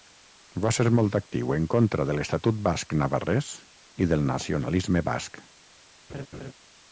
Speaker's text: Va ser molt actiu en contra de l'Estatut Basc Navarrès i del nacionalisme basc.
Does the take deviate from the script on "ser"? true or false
false